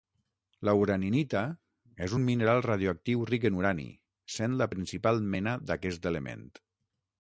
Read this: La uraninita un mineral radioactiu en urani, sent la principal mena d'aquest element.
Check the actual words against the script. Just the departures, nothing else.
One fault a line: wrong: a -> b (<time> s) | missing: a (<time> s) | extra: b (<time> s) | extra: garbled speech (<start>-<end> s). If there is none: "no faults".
extra: és (2.1 s)
extra: ric (3.3 s)